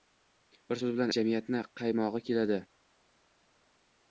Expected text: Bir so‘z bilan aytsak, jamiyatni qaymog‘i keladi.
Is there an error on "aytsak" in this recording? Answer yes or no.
yes